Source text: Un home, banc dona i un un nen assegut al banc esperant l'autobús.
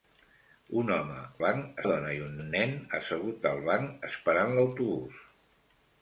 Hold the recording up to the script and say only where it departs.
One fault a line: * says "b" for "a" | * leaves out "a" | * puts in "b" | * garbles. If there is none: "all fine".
all fine